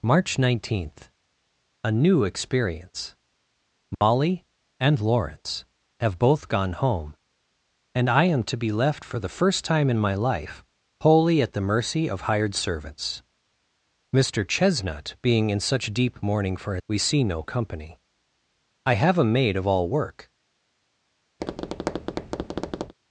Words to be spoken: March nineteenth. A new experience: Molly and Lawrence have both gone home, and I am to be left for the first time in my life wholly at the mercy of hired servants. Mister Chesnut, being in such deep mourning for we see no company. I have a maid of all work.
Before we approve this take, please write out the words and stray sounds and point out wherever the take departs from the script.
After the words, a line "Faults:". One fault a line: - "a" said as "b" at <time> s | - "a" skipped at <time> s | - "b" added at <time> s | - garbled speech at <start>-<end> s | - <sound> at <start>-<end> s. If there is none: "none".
March nineteenth. A new experience: Molly and Lawrence have both gone home, and I am to be left for the first time in my life wholly at the mercy of hired servants. Mister Chesnut, being in such deep mourning for we see no company. I have a maid of all work.
Faults:
- dropout at 3.9-4.0 s
- tap at 21.4-22.9 s